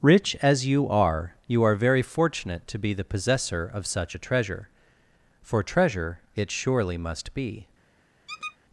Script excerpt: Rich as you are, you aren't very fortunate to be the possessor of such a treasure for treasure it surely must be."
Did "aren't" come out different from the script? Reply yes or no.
yes